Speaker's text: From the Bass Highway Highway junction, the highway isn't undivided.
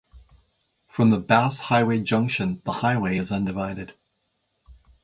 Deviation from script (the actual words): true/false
true